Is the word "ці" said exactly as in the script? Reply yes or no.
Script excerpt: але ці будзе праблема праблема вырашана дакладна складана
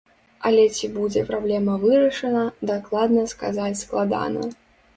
yes